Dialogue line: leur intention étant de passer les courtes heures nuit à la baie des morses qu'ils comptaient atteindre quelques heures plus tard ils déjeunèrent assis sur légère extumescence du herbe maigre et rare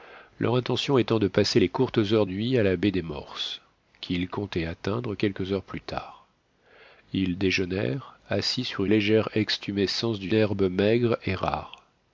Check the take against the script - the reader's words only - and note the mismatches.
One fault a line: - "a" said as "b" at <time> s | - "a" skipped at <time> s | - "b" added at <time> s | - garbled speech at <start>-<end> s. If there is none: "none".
none